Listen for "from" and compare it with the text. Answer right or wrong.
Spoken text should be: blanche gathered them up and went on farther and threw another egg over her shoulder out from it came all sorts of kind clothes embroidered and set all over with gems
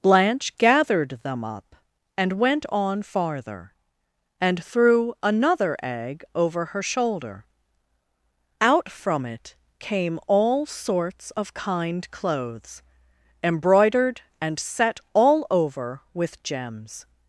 right